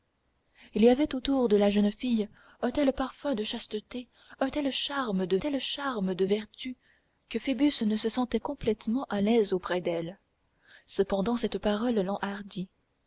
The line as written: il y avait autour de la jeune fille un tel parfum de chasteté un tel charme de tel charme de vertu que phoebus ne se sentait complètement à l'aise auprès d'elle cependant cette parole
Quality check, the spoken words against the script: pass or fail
pass